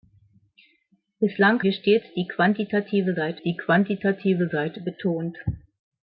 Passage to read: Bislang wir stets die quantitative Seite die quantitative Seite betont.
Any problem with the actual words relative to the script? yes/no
no